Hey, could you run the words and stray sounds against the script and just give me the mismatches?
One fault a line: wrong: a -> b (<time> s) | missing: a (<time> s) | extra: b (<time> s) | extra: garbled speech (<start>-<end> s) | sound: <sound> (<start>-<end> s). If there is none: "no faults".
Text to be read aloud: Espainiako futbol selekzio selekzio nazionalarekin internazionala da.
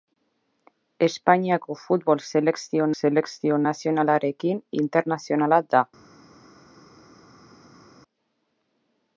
no faults